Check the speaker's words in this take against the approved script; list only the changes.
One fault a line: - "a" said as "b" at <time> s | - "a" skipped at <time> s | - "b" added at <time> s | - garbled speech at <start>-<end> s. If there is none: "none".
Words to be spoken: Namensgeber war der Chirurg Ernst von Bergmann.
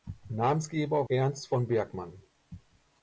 - "war der Chirurg" skipped at 1.1 s